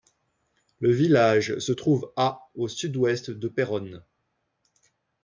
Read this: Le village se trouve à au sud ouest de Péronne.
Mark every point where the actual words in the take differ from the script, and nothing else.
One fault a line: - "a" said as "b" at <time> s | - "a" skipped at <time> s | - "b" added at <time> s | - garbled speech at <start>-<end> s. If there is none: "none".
none